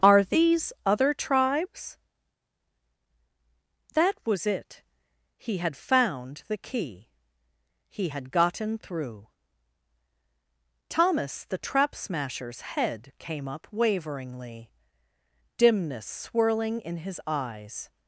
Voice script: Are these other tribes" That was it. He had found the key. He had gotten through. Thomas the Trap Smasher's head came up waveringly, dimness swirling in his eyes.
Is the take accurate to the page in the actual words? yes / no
yes